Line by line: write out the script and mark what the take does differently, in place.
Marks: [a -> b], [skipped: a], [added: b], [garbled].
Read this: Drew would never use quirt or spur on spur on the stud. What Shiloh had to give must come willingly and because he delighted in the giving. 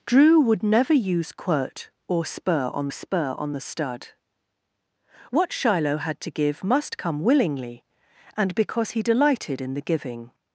Drew would never use quirt or spur on spur on the stud. What Shiloh had to give must come willingly and because he delighted in the giving.